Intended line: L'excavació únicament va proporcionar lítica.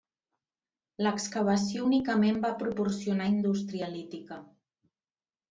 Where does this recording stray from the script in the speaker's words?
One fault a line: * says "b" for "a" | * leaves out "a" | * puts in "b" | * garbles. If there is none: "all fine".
* puts in "indústria"